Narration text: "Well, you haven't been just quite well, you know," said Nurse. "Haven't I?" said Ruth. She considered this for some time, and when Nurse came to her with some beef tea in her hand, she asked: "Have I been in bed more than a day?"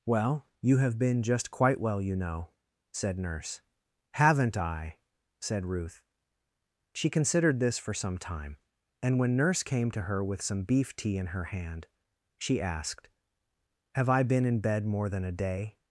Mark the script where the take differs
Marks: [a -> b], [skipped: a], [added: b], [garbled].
"Well, you [haven't -> have] been just quite well, you know," said Nurse. "Haven't I?" said Ruth. She considered this for some time, and when Nurse came to her with some beef tea in her hand, she asked: "Have I been in bed more than a day?"